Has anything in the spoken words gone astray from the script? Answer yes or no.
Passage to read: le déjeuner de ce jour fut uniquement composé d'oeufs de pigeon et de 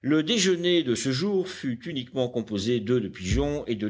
no